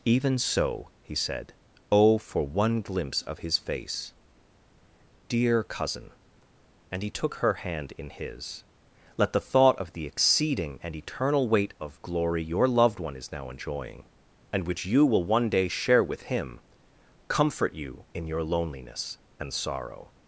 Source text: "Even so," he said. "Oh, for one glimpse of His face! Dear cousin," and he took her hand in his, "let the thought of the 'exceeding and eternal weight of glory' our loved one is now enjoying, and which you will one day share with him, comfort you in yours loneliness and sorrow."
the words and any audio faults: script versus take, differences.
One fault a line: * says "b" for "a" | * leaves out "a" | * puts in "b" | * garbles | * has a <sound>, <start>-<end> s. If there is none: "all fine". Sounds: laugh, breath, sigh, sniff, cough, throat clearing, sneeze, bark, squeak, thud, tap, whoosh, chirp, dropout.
* says "your" for "our"
* says "your" for "yours"